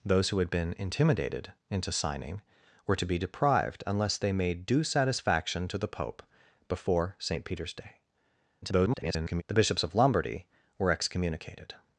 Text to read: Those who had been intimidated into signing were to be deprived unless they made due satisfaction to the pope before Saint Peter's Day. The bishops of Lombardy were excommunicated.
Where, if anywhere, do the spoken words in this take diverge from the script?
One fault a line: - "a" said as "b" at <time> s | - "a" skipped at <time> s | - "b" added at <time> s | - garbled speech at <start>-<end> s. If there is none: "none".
- garbled speech at 8.6-9.4 s